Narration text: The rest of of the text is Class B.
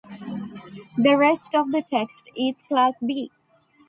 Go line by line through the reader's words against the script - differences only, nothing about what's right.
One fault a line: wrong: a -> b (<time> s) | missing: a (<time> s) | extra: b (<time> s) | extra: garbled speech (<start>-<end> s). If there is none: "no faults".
missing: of (1.7 s)